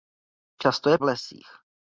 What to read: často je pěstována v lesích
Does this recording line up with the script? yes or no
no